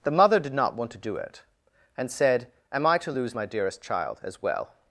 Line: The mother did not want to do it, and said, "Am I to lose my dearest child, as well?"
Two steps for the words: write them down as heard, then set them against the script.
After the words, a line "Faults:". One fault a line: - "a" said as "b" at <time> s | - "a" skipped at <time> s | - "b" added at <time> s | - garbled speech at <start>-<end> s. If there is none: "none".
The mother did not want to do it, and said, "Am I to lose my dearest child, as well?"
Faults:
none